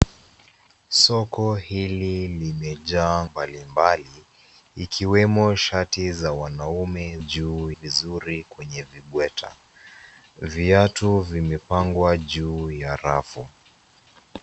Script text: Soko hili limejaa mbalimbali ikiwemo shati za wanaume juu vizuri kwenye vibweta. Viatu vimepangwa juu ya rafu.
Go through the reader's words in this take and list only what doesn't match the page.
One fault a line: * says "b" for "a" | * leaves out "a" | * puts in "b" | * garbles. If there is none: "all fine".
all fine